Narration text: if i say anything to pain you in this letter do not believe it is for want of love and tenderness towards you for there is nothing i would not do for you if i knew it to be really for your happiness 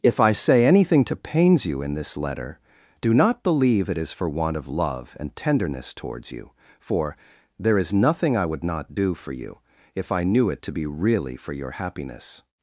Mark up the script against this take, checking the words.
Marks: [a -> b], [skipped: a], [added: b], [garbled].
if i say anything to [pain -> pains] you in this letter do not believe it is for want of love and tenderness towards you for there is nothing i would not do for you if i knew it to be really for your happiness